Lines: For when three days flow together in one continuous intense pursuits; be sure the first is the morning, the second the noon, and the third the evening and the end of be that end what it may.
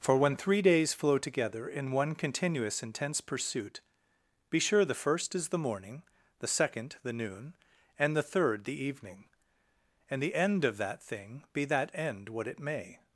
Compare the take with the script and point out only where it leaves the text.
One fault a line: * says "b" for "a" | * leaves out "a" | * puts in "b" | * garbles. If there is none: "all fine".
* says "pursuit" for "pursuits"
* puts in "that thing"